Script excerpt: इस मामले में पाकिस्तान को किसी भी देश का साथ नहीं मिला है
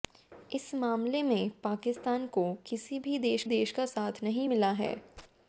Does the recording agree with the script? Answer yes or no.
no